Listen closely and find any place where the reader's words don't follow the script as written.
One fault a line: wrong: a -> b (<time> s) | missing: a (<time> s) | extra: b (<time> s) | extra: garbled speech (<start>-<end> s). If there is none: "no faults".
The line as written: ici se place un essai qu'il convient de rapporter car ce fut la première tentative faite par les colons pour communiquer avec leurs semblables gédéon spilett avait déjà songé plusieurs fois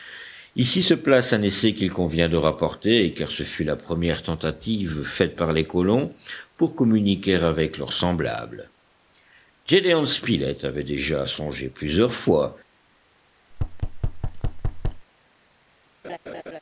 no faults